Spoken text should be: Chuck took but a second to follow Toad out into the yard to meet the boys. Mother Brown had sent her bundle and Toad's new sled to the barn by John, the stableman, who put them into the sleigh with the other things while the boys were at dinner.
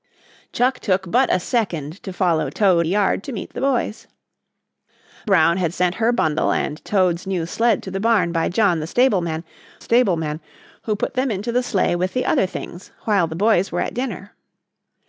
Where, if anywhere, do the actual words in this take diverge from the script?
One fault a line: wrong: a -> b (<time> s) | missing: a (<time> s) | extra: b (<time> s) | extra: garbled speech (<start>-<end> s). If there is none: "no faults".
missing: out into the (2.9 s)
missing: Mother (4.0 s)
extra: stableman (9.8 s)